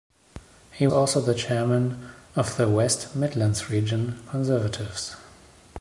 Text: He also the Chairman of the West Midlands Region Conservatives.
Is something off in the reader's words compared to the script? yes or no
no